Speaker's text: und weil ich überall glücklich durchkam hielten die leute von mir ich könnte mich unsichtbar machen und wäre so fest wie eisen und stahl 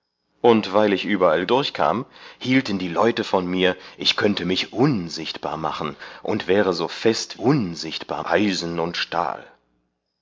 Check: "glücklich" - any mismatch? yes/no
yes